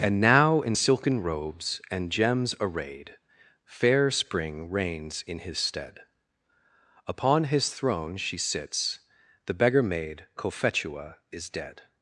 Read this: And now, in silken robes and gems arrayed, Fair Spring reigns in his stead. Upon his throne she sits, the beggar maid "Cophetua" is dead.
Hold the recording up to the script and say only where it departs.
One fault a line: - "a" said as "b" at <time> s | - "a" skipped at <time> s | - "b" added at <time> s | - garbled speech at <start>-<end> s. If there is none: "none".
none